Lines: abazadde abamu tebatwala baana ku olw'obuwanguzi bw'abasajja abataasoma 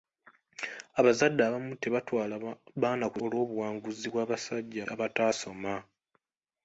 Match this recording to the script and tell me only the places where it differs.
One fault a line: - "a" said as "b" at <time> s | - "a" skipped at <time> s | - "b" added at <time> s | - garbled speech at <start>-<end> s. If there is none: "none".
none